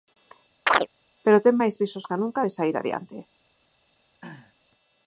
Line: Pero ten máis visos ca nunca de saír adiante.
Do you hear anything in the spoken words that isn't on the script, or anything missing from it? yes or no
no